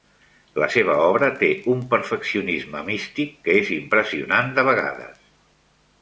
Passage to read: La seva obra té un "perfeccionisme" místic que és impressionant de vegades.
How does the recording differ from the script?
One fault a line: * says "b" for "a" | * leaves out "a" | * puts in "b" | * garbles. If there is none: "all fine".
all fine